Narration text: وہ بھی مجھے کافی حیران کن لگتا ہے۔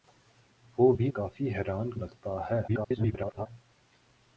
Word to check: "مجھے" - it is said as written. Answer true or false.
false